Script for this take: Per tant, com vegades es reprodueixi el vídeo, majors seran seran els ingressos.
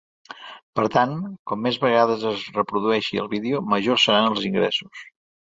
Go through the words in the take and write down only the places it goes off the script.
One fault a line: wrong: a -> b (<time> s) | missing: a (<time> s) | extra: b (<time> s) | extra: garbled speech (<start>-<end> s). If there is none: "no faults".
extra: més (1.7 s)
missing: seran (4.3 s)